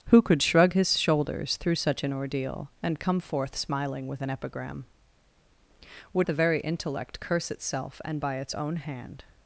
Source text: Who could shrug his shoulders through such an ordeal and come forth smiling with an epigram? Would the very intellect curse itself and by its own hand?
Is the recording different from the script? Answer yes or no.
no